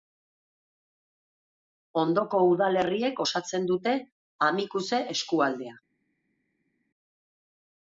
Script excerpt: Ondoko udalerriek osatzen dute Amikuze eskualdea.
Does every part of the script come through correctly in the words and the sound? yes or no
yes